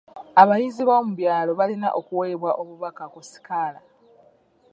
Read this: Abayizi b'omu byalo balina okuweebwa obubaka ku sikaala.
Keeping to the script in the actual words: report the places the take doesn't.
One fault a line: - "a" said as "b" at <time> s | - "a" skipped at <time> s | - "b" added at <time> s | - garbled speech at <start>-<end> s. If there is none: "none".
none